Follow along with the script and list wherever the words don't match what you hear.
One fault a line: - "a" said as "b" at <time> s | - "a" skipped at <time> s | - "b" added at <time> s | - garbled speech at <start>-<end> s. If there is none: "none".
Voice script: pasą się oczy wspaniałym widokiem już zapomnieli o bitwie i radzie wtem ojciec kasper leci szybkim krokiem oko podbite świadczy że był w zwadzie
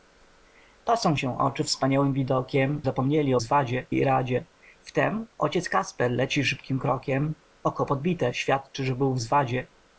- "już" skipped at 2.8 s
- "bitwie" said as "zwadzie" at 3.4 s